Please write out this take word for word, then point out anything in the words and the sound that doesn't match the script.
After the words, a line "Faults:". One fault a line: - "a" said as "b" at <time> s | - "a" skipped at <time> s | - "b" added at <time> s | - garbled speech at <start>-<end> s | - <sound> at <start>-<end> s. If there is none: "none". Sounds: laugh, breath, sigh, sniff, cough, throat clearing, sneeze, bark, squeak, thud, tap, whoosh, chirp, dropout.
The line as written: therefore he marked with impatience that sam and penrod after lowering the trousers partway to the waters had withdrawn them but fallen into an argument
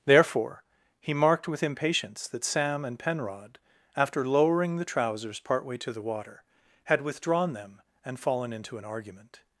therefore he marked with impatience that sam and penrod after lowering the trousers partway to the water had withdrawn them and fallen into an argument
Faults:
- "waters" said as "water" at 6.0 s
- "but" said as "and" at 8.0 s